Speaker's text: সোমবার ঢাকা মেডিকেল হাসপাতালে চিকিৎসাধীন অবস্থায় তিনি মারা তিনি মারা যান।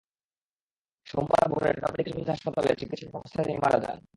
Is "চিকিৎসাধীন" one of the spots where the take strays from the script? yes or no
no